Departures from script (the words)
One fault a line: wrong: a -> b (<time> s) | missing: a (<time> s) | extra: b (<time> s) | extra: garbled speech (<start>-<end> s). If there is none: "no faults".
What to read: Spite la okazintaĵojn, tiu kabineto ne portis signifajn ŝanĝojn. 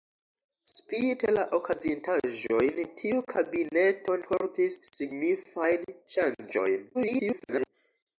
missing: ne (4.2 s)
extra: garbled speech (6.9-7.7 s)